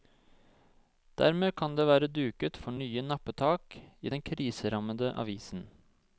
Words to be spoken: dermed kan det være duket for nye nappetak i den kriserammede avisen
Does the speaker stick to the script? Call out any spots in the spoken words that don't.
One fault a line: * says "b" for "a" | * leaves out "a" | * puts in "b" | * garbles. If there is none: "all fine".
all fine